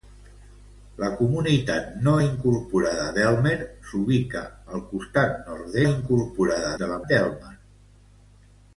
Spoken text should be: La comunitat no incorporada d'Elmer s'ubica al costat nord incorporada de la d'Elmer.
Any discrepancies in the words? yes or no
no